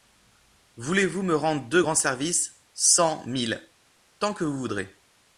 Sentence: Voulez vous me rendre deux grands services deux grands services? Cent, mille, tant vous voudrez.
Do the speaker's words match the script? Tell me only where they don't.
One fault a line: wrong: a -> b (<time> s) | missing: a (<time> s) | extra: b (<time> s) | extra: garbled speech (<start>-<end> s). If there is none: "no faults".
missing: deux grands services (2.6 s)
extra: que (4.3 s)